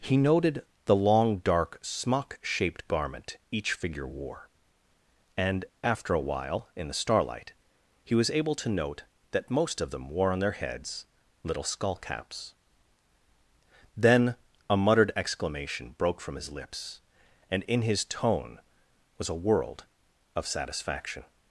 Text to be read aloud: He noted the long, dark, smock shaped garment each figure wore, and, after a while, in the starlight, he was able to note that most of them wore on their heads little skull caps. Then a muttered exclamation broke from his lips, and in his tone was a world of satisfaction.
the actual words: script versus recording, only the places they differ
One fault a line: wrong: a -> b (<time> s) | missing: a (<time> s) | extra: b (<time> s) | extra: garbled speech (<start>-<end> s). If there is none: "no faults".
no faults